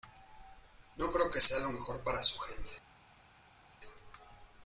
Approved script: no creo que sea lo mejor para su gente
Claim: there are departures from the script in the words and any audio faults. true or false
false